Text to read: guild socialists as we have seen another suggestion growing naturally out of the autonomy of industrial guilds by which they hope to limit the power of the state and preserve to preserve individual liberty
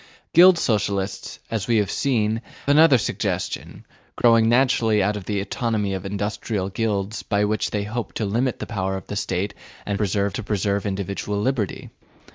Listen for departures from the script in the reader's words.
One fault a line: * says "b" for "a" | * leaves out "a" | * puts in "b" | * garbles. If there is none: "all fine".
all fine